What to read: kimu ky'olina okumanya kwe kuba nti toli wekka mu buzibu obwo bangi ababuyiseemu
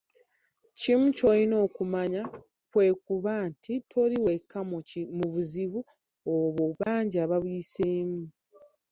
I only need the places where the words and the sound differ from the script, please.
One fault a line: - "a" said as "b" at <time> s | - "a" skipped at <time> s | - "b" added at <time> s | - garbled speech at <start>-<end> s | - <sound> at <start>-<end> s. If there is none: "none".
- dropout at 6.8-6.9 s